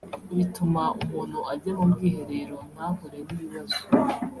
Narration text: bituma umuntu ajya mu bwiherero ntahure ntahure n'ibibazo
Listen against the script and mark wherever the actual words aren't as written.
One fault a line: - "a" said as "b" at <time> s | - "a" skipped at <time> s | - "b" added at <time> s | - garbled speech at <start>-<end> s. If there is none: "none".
- "ntahure" skipped at 3.2 s